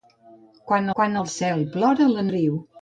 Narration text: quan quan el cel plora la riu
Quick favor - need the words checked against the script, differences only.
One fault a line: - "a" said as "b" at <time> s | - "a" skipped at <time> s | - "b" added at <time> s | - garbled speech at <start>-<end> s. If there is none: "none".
none